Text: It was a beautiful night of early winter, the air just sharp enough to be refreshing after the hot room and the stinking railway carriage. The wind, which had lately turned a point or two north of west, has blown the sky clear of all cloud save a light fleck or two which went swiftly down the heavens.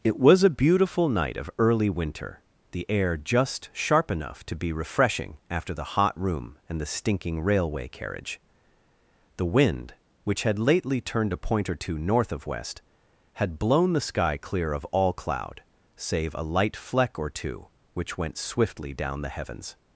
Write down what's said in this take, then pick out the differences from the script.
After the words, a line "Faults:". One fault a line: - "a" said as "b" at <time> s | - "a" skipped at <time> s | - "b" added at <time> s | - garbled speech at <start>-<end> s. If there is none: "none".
It was a beautiful night of early winter, the air just sharp enough to be refreshing after the hot room and the stinking railway carriage. The wind, which had lately turned a point or two north of west, had blown the sky clear of all cloud save a light fleck or two which went swiftly down the heavens.
Faults:
- "has" said as "had" at 13.3 s